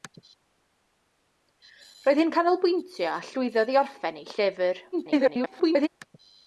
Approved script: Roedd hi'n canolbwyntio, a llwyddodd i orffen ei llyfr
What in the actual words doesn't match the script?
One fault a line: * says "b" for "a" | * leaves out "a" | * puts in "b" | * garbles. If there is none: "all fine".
* garbles